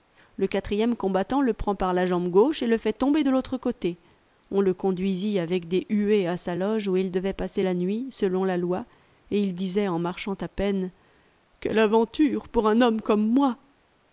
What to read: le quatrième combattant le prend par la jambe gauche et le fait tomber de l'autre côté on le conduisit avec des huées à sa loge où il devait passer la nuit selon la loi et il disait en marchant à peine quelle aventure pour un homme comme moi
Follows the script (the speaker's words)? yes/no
yes